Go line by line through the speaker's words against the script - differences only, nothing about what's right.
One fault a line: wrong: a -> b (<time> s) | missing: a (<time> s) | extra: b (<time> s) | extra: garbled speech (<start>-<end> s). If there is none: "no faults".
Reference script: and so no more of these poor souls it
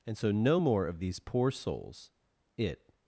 no faults